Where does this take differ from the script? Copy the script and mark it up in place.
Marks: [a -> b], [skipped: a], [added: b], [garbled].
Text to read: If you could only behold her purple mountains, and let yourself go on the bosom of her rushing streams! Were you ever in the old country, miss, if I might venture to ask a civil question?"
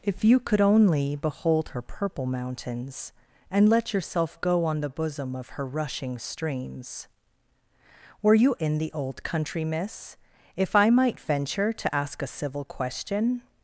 If you could only behold her purple mountains, and let yourself go on the bosom of her rushing streams! Were you [skipped: ever] in the old country, miss, if I might venture to ask a civil question?"